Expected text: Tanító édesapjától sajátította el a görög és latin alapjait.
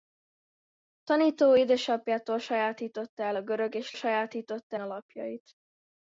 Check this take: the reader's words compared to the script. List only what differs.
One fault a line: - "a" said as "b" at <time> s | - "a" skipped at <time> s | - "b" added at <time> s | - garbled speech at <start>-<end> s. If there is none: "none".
- "latin" said as "sajátította" at 3.9 s